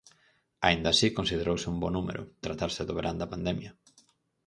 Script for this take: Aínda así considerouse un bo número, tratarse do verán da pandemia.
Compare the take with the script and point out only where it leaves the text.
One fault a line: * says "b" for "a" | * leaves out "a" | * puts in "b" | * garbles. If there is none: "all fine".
all fine